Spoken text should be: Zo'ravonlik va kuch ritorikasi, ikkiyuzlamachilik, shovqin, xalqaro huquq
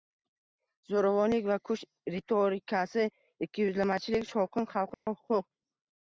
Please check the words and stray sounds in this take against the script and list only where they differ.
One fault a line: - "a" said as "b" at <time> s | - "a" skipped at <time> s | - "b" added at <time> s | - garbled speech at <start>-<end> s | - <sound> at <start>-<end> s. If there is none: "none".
- dropout at 4.9-5.1 s